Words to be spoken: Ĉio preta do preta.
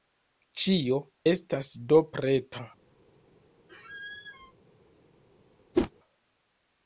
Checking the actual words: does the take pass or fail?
fail